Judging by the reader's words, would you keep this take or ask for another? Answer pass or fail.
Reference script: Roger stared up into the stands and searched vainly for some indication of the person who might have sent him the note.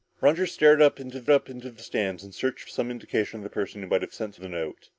fail